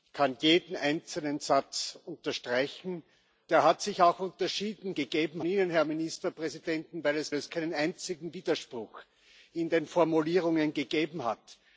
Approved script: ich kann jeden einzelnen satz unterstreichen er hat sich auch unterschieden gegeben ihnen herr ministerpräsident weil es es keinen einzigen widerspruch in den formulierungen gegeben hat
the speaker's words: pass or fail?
pass